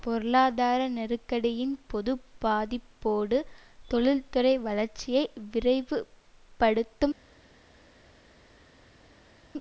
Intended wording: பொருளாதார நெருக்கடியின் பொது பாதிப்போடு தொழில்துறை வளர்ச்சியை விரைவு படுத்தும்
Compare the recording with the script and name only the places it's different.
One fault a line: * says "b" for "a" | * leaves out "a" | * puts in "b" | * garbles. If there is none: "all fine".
all fine